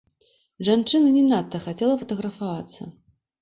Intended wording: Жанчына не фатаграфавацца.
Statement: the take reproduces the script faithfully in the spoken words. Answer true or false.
false